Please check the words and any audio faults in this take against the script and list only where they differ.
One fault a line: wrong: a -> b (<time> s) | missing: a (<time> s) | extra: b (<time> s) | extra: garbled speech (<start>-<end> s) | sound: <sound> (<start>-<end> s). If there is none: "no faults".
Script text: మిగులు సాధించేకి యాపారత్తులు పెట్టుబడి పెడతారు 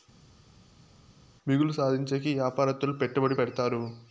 no faults